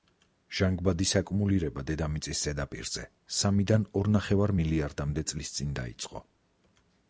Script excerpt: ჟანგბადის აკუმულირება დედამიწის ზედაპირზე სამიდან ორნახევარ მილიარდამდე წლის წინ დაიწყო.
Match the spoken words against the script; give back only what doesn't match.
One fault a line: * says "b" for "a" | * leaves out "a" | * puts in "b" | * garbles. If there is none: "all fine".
all fine